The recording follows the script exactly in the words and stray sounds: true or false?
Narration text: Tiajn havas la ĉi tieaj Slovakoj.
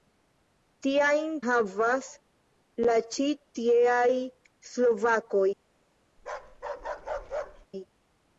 false